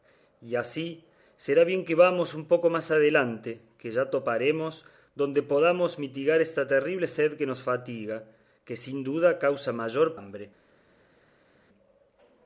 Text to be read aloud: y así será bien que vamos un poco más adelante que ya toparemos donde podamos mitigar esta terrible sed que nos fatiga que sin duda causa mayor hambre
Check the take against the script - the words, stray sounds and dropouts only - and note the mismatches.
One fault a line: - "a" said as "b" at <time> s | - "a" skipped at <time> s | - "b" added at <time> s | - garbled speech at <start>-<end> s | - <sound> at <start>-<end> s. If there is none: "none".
none